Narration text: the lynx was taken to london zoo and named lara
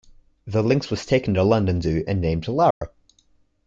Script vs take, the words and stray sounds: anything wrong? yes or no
yes